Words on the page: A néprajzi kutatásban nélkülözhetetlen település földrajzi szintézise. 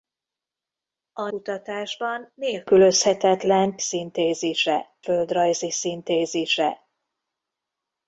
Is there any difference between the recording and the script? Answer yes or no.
yes